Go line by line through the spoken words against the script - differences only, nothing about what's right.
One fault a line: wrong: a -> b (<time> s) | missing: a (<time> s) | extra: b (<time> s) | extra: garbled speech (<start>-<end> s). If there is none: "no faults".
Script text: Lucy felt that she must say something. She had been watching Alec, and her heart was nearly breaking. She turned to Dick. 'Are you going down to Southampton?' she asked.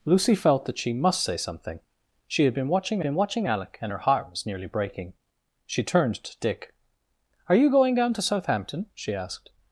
extra: been watching (3.0 s)